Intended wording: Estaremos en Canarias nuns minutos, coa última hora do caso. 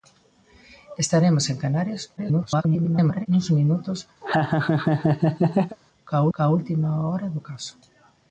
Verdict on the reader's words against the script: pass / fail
fail